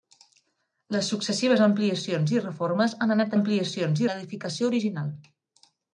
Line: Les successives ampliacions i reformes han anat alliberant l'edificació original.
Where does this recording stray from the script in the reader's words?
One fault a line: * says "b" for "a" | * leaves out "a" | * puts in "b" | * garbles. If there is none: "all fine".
* says "ampliacions" for "alliberant"